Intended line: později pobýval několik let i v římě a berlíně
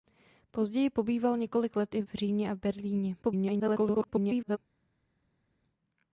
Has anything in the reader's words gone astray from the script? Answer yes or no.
yes